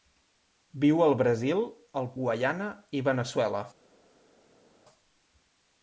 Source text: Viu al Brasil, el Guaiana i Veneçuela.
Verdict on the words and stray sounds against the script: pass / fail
pass